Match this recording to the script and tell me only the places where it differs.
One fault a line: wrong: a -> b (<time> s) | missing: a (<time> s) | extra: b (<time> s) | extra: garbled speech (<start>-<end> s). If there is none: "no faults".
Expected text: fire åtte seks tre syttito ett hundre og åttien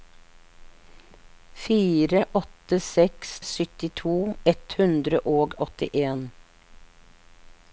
missing: tre (3.4 s)